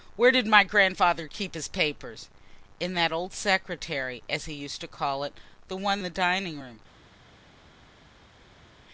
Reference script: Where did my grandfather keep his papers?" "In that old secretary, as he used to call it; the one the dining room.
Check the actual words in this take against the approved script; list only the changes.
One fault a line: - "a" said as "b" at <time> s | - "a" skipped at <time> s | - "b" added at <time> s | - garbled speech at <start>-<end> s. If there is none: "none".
none